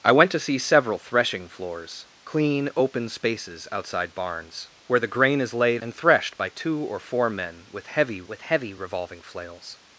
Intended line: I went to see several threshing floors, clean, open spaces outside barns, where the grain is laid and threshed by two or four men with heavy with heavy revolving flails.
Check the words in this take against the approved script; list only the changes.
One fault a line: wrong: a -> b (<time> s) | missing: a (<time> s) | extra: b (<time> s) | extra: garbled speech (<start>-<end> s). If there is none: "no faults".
no faults